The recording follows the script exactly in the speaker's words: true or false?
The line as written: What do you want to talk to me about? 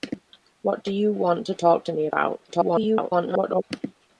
false